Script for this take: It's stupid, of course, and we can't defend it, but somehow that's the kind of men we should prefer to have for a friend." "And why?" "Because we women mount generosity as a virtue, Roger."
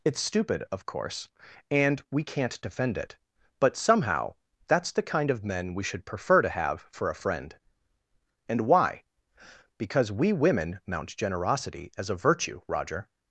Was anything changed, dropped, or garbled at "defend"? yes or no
no